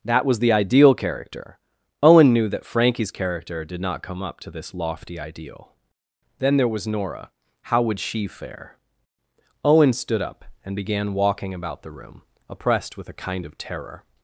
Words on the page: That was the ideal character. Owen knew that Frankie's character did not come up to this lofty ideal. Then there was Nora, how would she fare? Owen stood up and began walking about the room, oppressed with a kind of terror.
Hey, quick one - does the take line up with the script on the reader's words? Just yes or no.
yes